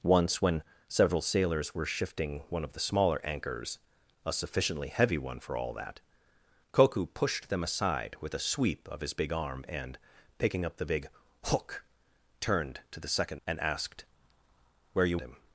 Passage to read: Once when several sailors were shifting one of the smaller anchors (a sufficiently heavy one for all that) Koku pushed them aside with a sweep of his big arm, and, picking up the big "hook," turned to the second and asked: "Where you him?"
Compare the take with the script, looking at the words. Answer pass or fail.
pass